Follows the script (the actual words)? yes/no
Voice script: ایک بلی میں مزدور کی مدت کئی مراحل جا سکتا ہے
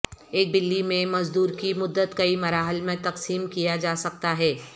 no